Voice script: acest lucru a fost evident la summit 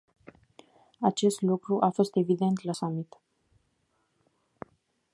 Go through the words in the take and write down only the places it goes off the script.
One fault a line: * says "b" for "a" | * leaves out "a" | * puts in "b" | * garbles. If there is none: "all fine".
all fine